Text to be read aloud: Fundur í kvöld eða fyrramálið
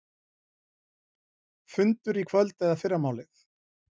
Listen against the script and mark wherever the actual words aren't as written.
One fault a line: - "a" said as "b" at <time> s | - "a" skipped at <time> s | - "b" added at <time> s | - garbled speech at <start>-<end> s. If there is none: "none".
none